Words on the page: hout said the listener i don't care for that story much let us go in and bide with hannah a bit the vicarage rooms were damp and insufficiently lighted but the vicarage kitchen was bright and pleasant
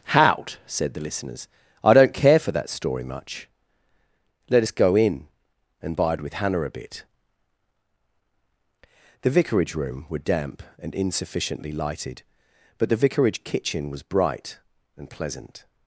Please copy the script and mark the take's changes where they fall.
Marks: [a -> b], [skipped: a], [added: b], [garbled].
hout said the [listener -> listeners] i don't care for that story much let us go in and bide with hannah a bit the vicarage [rooms -> room] were damp and insufficiently lighted but the vicarage kitchen was bright and pleasant